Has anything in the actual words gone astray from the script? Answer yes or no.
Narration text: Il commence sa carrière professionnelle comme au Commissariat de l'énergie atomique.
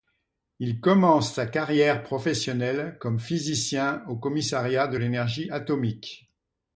yes